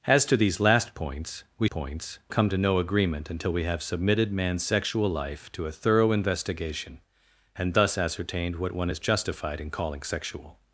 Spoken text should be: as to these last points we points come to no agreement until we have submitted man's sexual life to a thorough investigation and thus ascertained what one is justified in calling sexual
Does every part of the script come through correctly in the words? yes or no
yes